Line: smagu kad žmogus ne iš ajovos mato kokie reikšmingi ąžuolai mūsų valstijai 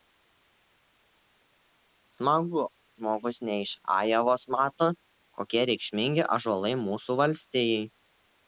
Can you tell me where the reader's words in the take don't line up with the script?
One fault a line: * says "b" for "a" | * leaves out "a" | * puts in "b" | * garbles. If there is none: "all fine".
* leaves out "kad"